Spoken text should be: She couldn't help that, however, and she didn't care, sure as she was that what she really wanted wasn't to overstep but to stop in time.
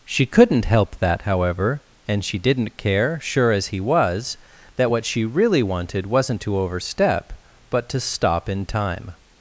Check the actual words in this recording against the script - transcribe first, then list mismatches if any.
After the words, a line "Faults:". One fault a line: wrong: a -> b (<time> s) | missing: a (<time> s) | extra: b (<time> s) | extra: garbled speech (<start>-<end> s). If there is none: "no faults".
She couldn't help that, however, and she didn't care, sure as he was that what she really wanted wasn't to overstep but to stop in time.
Faults:
wrong: she -> he (3.7 s)